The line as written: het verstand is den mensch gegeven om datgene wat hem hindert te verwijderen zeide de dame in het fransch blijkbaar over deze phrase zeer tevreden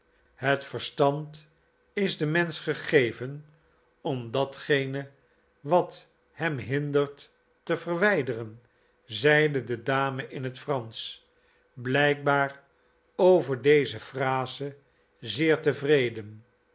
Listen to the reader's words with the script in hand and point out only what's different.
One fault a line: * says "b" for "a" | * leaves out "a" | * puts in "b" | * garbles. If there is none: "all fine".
all fine